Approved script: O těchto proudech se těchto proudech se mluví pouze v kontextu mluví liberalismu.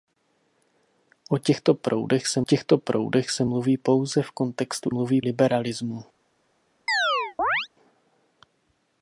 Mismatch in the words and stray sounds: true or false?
true